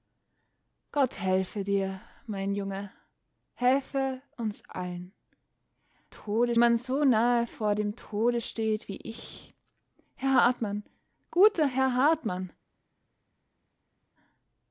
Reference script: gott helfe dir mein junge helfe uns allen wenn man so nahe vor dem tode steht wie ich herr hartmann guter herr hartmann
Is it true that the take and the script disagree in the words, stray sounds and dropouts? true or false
true